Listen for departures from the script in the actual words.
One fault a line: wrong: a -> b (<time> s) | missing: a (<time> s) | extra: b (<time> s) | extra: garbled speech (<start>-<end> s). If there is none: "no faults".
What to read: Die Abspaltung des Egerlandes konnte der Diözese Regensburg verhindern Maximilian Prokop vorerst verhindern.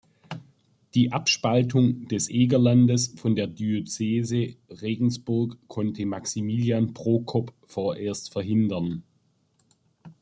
wrong: konnte -> von (3.2 s)
wrong: verhindern -> konnte (5.7 s)